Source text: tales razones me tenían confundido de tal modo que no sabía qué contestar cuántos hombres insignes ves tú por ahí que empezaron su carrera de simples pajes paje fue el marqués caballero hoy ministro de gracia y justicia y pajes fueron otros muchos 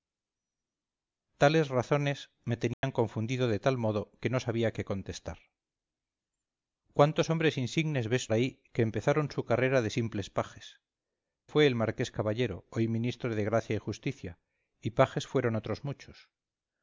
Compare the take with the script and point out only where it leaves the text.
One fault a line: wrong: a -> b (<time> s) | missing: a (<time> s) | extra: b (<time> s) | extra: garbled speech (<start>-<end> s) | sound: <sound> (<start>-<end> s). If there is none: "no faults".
sound: dropout (2.7-2.8 s)
missing: tú por (8.3 s)
missing: paje (10.8 s)